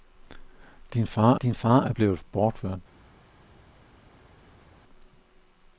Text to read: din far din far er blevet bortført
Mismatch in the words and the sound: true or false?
false